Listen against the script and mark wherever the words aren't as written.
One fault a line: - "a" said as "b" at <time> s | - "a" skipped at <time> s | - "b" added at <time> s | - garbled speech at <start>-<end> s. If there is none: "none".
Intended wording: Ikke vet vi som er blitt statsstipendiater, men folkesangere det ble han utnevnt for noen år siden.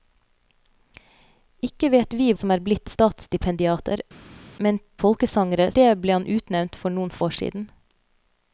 none